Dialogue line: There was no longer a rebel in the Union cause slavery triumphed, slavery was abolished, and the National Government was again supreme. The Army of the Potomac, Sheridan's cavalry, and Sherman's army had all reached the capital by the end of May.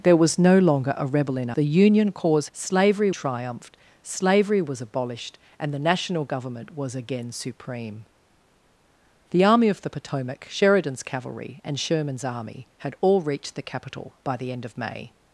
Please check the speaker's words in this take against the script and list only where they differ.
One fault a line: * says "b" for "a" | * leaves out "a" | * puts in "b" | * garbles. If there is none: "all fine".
all fine